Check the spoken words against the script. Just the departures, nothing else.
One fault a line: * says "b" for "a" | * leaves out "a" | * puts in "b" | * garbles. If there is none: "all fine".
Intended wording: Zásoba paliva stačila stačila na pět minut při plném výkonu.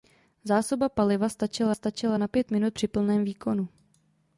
all fine